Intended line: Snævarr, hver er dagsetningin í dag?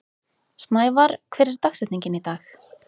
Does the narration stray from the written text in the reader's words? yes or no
no